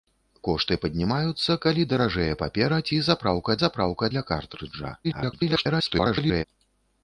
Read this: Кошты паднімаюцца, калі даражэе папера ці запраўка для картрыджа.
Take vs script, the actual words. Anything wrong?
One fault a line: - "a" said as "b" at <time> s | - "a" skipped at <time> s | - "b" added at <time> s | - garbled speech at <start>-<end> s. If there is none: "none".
- "запраўка" added at 3.7 s
- garbled speech at 5.0-6.4 s